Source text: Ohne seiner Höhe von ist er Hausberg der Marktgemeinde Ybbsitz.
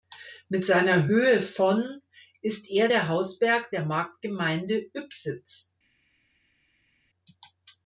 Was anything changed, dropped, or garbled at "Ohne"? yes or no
yes